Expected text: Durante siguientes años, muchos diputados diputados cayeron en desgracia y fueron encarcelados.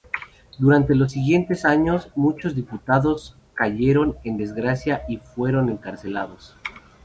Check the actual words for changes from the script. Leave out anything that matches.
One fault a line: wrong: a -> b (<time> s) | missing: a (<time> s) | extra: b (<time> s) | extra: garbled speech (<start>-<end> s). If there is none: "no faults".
extra: los (0.9 s)
missing: diputados (3.4 s)